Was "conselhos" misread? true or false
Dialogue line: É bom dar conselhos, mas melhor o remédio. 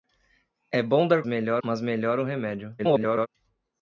true